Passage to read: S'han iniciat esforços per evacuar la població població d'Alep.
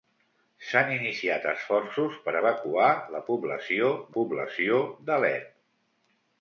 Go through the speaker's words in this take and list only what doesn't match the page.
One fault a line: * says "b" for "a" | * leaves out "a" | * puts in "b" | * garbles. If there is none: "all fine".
all fine